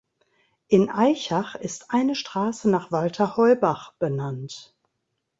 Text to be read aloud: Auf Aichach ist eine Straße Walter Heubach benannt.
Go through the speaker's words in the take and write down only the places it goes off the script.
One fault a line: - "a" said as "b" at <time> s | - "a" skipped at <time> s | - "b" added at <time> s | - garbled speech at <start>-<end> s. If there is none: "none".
- "Auf" said as "In" at 0.7 s
- "nach" added at 2.7 s